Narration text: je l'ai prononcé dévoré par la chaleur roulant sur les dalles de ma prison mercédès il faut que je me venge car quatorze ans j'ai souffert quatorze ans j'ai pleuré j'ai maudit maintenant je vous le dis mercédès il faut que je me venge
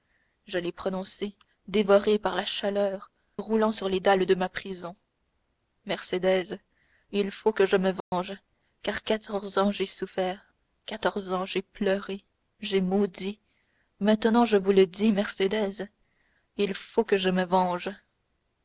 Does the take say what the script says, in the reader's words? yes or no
yes